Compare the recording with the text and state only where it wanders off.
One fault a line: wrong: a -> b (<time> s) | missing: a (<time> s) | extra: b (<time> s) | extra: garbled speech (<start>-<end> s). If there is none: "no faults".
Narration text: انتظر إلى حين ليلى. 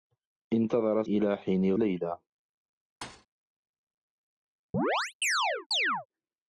no faults